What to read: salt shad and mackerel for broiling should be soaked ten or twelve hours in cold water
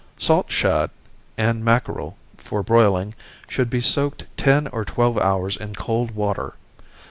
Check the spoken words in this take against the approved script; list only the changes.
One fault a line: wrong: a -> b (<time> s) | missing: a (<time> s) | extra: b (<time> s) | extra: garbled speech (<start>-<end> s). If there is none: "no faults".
no faults